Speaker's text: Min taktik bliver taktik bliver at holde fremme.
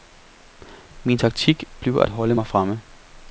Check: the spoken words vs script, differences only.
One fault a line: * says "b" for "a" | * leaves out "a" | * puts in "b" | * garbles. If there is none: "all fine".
* leaves out "taktik bliver"
* puts in "mig"